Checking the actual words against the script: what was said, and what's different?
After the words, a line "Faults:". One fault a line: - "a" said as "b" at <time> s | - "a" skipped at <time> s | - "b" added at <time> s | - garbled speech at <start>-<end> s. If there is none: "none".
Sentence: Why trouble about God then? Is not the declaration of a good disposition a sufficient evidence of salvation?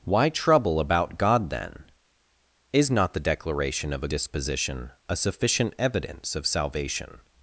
Why trouble about God then? Is not the declaration of a disposition a sufficient evidence of salvation?
Faults:
- "good" skipped at 4.1 s